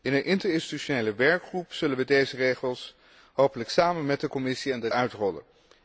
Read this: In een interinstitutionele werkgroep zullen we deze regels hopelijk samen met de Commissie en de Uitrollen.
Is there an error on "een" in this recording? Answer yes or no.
no